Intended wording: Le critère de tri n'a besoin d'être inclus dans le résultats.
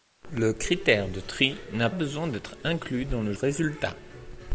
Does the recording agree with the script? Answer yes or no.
yes